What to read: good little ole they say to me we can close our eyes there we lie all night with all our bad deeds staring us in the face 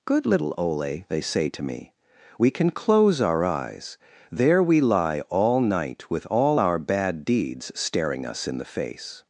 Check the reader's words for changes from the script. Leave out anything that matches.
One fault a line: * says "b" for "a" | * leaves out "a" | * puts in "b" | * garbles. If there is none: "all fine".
all fine